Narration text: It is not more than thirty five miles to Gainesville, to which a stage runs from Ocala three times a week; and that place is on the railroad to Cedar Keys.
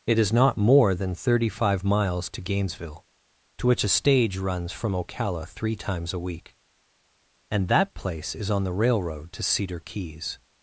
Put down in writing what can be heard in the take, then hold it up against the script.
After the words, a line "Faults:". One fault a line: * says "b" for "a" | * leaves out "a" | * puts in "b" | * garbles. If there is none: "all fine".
It is not more than thirty five miles to Gainesville, to which a stage runs from Ocala three times a week; and that place is on the railroad to Cedar Keys.
Faults:
all fine